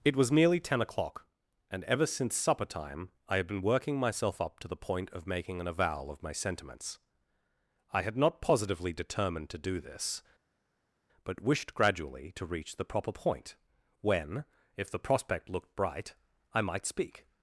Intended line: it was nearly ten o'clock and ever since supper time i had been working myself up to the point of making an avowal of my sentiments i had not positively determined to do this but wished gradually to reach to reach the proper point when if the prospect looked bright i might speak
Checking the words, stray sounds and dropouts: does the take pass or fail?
fail